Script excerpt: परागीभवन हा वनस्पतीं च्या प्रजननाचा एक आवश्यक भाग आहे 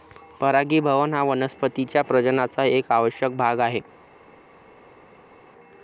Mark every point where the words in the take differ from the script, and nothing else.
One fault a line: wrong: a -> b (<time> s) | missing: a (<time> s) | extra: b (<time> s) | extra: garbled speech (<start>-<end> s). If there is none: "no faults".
no faults